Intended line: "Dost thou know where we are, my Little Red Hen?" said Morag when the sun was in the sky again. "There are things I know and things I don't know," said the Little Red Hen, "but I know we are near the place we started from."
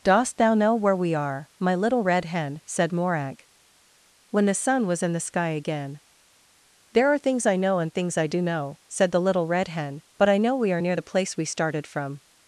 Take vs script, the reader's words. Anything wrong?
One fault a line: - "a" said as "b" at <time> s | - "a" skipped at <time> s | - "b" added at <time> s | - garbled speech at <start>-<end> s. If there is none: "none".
- "don't" said as "do" at 8.3 s